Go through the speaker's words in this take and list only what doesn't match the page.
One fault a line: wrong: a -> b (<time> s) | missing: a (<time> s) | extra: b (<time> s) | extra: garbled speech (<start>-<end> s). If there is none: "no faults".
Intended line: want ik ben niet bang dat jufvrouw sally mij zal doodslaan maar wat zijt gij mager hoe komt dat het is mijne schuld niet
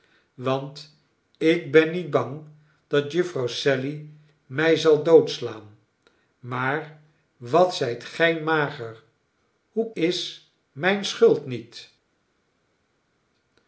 missing: komt dat het (9.9 s)